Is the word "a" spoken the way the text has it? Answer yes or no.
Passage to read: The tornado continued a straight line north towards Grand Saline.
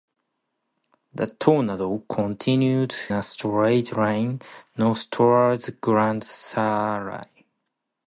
yes